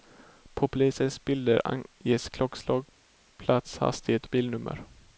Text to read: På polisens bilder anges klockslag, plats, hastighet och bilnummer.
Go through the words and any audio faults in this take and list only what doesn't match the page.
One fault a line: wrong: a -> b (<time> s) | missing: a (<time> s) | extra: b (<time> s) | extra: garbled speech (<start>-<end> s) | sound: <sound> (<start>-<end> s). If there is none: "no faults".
missing: och (4.3 s)